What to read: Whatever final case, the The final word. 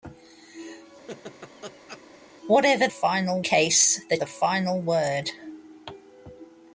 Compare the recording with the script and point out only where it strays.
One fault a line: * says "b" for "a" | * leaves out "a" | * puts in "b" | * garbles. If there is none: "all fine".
all fine